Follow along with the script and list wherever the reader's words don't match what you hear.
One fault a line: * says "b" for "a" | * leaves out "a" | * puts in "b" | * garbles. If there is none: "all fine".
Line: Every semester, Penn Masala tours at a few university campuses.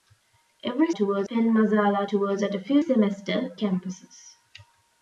* says "tours" for "semester"
* says "semester" for "university"